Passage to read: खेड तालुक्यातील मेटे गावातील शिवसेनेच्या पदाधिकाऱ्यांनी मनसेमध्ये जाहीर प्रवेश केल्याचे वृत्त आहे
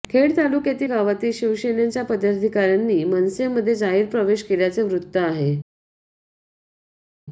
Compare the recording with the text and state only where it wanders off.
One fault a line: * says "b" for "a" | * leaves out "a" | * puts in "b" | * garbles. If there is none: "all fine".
* leaves out "मेटे"